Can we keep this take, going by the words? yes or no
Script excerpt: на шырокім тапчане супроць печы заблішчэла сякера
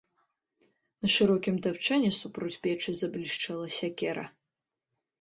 yes